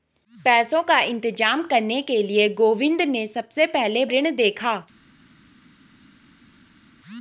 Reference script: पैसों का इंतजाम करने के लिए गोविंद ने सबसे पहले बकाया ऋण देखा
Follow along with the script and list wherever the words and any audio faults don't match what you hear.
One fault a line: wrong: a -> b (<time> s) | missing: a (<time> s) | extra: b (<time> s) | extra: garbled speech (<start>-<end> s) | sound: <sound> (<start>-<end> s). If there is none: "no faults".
missing: बकाया (4.0 s)